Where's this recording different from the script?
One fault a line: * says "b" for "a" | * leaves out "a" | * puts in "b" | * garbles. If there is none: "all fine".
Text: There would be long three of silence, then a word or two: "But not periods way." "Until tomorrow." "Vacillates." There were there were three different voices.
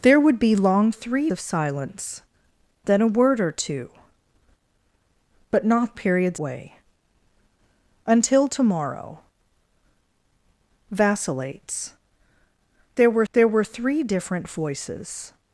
all fine